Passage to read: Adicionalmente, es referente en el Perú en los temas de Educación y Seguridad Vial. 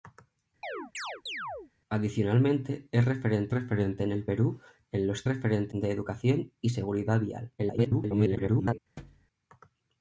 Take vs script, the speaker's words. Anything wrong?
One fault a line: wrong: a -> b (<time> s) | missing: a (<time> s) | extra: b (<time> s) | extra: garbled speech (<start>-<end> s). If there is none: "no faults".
extra: referente (3.5 s)
wrong: temas -> referente (5.2 s)
extra: garbled speech (7.6-8.8 s)